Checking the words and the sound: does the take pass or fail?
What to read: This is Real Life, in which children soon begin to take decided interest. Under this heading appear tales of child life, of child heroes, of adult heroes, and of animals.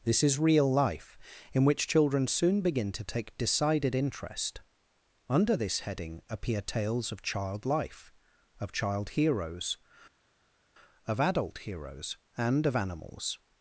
pass